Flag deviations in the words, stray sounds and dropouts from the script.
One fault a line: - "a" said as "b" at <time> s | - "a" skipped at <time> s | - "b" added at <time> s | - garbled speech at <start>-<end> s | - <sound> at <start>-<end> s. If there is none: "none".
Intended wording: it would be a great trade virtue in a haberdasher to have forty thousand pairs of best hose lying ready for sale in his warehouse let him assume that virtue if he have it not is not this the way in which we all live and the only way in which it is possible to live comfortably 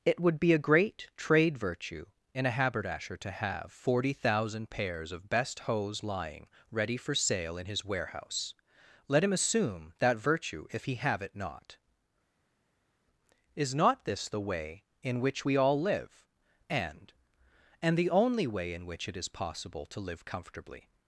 - "and" added at 17.8 s